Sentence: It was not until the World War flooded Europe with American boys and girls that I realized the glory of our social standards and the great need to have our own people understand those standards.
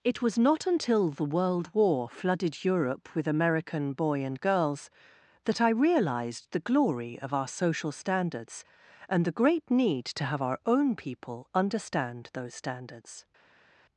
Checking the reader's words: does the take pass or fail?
fail